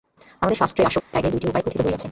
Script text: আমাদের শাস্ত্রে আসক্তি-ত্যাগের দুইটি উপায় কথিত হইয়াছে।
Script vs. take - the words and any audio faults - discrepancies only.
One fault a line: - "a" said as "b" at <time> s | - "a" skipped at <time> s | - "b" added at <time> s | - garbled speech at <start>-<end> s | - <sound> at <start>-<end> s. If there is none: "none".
- dropout at 1.0-1.1 s